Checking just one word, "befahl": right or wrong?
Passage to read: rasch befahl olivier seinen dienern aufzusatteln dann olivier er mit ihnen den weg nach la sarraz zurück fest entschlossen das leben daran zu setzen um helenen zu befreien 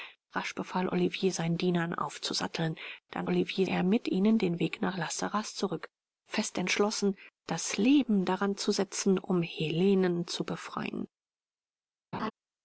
right